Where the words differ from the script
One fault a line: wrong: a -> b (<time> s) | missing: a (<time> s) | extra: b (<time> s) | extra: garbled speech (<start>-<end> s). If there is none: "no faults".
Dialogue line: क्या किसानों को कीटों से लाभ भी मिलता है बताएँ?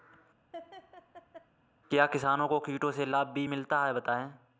no faults